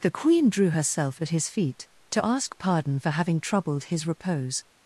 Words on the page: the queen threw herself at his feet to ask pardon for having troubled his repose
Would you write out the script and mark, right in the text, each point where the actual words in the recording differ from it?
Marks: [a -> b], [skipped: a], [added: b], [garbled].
the queen [threw -> drew] herself at his feet to ask pardon for having troubled his repose